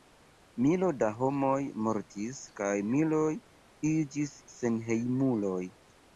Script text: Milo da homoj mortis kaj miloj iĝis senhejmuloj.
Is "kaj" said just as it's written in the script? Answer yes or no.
yes